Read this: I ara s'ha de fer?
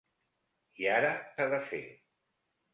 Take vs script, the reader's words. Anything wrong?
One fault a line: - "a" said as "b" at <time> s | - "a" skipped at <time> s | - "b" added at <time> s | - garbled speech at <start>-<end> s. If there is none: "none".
none